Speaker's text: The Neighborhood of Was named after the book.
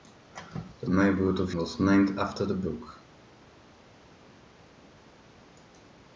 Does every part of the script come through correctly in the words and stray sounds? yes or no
yes